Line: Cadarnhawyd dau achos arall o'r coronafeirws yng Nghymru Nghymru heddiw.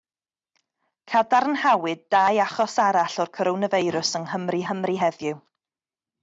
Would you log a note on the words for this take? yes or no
no